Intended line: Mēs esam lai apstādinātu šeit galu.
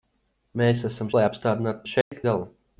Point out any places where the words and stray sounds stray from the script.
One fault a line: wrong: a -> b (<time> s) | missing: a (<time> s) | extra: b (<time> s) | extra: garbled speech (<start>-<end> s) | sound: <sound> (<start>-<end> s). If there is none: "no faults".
sound: dropout (2.0-2.1 s)